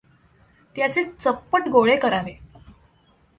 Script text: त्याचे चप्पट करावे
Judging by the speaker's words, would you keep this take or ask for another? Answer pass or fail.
fail